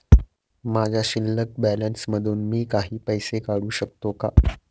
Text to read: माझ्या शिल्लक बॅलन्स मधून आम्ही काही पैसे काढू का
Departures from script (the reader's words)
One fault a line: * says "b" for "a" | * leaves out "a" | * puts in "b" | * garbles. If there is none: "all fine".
* says "मी" for "आम्ही"
* puts in "शकतो"